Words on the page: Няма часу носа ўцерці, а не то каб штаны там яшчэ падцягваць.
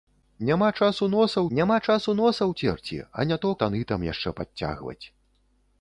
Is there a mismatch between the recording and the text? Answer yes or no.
yes